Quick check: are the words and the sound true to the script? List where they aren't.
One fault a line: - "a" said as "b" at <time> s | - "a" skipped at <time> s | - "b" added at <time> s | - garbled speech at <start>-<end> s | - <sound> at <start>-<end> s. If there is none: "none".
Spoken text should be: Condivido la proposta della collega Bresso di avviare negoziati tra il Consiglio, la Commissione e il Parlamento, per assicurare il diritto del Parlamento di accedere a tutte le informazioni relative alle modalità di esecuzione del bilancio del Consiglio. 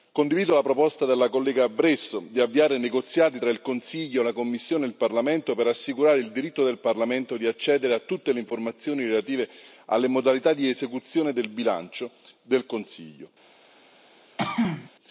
- throat clearing at 14.4-14.9 s